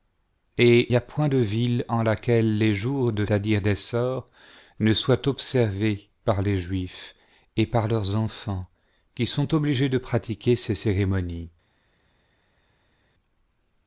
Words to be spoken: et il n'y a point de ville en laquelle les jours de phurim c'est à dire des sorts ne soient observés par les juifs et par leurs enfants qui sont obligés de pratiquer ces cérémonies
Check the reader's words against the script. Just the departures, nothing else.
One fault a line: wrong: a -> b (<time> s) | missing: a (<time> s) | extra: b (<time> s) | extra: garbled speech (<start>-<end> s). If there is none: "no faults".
missing: il (0.9 s)
missing: phurim c'est (3.2 s)